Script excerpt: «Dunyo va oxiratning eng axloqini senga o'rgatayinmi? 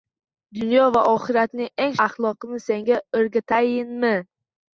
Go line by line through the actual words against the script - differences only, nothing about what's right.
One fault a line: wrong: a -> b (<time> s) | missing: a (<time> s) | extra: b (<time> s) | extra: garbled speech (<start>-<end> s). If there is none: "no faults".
no faults